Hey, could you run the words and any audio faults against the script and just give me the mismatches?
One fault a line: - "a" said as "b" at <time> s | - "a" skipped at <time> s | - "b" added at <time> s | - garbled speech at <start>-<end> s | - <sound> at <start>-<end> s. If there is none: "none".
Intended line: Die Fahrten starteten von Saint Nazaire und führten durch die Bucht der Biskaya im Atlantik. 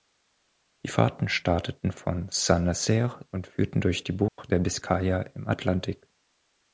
- dropout at 4.3-4.4 s